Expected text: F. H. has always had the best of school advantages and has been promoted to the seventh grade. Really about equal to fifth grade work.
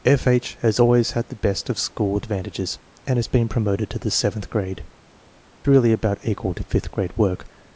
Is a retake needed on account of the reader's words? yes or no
no